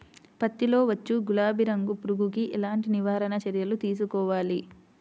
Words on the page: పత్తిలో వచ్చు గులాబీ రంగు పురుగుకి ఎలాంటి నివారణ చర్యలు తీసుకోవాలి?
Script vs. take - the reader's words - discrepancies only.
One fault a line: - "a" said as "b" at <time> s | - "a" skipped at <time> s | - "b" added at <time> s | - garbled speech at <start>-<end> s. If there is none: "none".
none